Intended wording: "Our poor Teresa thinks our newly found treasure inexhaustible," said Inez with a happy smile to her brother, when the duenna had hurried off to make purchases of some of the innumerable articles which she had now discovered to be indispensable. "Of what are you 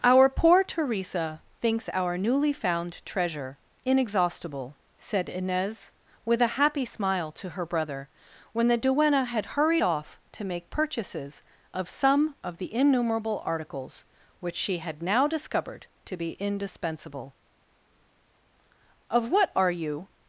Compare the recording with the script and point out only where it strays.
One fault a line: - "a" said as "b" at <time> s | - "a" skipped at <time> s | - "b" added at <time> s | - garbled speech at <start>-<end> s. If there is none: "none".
none